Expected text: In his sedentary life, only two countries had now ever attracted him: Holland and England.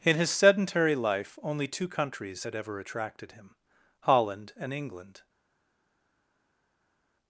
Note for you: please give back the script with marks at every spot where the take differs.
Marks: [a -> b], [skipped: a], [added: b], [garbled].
In his sedentary life, only two countries had [skipped: now] ever attracted him: Holland and England.